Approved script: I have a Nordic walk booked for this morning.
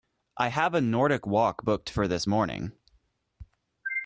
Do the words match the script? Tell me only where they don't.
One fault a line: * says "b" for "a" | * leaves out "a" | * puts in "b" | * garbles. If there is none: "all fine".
all fine